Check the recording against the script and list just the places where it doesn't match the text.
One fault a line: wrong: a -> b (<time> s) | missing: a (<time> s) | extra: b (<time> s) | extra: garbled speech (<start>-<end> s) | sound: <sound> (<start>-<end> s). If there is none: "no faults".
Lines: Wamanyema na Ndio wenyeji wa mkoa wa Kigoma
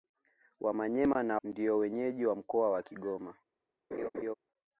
sound: laugh (3.9-4.3 s)